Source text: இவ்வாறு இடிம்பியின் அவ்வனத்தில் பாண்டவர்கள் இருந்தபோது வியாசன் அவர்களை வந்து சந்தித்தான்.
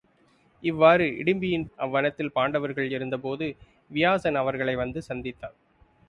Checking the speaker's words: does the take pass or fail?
pass